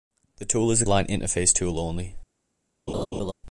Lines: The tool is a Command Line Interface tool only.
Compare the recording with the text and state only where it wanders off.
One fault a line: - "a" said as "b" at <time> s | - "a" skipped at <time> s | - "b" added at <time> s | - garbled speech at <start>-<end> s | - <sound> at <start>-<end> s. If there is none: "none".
- "Command" skipped at 0.8 s
- laugh at 2.9-3.3 s